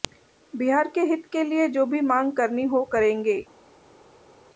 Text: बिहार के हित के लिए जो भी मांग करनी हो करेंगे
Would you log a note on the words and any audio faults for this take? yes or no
no